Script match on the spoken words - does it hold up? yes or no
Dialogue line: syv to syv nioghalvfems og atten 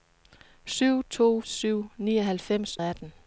yes